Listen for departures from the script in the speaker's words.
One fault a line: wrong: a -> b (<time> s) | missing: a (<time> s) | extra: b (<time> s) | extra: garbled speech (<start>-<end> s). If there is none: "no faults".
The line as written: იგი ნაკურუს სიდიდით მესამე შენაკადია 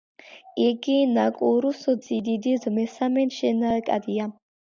no faults